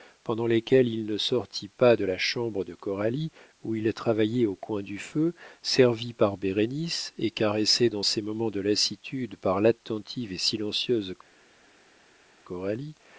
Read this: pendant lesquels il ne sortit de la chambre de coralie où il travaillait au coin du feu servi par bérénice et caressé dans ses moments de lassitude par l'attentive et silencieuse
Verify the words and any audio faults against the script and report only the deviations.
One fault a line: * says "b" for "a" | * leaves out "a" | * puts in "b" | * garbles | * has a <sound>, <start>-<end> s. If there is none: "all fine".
* puts in "pas"